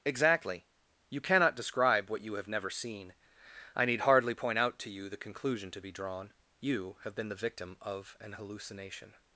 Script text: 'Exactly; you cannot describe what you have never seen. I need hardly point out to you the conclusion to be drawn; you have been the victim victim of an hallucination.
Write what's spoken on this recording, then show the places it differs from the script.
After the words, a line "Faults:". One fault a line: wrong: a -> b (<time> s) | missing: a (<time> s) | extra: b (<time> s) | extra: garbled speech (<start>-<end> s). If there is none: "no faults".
'Exactly; you cannot describe what you have never seen. I need hardly point out to you the conclusion to be drawn; you have been the victim of an hallucination.
Faults:
missing: victim (7.8 s)